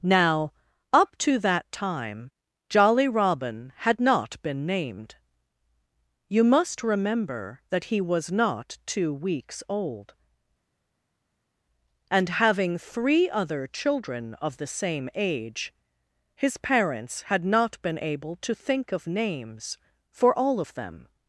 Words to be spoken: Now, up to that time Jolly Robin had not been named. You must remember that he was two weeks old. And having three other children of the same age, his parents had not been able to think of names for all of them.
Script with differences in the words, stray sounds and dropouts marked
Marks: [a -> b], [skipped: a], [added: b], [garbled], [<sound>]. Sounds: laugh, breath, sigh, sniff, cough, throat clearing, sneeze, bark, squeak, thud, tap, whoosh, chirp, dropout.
Now, up to that time Jolly Robin had not been named. You must remember that he was [added: not] two weeks old. And having three other children of the same age, his parents had not been able to think of names for all of them.